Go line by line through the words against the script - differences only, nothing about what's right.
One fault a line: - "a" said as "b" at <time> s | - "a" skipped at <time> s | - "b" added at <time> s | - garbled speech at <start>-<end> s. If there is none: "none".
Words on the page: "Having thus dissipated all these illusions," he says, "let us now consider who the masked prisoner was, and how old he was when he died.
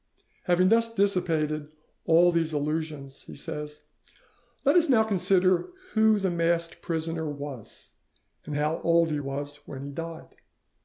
none